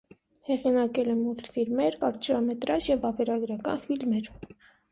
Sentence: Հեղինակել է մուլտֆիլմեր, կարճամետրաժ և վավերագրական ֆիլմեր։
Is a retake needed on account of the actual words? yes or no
no